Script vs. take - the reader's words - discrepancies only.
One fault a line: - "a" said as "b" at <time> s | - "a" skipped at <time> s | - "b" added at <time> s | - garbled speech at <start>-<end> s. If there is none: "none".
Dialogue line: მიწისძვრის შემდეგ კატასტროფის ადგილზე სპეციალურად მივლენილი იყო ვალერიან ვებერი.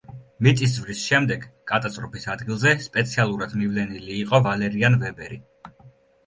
none